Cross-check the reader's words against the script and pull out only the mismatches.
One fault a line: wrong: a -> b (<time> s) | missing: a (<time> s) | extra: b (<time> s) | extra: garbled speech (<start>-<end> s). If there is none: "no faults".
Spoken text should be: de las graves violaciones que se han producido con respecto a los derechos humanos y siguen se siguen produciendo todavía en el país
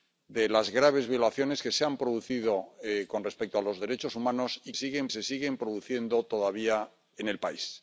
no faults